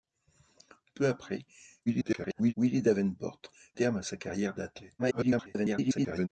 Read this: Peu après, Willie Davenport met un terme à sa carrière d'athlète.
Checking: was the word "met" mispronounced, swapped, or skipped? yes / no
yes